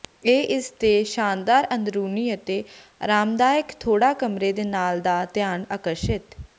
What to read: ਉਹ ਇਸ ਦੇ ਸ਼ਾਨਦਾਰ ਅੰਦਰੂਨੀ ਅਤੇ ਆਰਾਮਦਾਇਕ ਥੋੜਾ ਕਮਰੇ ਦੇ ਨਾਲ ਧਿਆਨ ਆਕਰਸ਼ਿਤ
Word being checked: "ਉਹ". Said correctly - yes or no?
no